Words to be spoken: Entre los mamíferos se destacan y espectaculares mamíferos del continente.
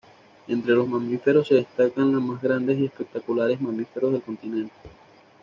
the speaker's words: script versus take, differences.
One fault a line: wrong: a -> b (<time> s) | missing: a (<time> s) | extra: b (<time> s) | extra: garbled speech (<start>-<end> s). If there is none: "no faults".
extra: los más grandes (2.1 s)